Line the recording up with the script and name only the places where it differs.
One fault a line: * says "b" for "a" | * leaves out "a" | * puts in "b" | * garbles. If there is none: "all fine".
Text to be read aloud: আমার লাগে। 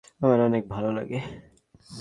* puts in "অনেক ভালো"